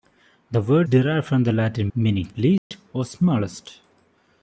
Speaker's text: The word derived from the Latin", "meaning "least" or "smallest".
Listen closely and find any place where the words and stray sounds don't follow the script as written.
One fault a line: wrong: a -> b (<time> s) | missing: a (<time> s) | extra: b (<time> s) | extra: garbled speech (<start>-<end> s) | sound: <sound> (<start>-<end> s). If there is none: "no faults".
sound: dropout (2.6-2.7 s)